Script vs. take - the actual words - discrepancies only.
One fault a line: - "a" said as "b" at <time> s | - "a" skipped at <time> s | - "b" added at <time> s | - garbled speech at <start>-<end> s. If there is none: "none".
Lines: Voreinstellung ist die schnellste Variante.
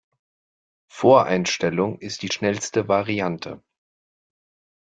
none